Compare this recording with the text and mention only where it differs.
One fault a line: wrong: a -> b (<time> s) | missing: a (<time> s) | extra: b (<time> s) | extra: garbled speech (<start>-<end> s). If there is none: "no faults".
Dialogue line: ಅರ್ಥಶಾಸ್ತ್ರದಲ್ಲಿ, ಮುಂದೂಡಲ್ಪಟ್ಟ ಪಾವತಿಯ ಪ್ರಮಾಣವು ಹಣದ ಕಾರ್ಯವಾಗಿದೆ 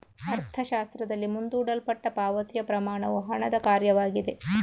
no faults